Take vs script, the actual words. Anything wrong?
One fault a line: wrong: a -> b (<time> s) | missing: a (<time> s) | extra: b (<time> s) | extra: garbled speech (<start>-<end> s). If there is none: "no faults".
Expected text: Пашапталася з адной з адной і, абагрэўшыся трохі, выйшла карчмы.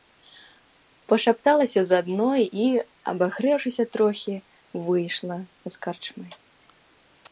missing: з адной (2.4 s)
extra: з (5.7 s)